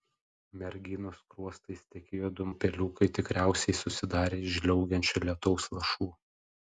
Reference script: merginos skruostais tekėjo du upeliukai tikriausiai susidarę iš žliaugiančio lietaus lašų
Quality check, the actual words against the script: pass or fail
pass